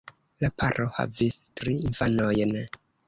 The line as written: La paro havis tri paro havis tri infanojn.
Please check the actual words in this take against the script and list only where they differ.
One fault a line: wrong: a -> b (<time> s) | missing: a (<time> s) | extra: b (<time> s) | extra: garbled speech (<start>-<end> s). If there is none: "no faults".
missing: paro havis tri (1.7 s)